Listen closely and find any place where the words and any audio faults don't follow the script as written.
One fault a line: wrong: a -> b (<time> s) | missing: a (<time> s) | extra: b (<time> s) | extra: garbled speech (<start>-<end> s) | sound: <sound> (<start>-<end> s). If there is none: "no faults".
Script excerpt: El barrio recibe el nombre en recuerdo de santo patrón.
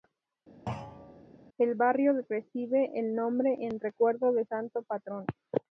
sound: thud (0.7-1.2 s)